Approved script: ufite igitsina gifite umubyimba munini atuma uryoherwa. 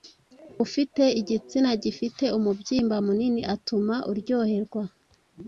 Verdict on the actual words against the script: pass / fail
pass